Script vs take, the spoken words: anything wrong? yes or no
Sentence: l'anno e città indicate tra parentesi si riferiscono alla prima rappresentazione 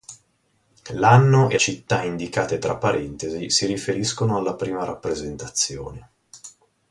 no